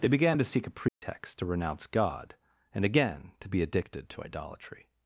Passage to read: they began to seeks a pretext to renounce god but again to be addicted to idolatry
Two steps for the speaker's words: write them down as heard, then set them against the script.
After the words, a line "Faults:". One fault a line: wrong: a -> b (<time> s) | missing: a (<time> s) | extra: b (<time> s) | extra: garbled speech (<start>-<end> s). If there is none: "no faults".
they began to seek a pretext to renounce god and again to be addicted to idolatry
Faults:
wrong: seeks -> seek (0.4 s)
wrong: but -> and (2.7 s)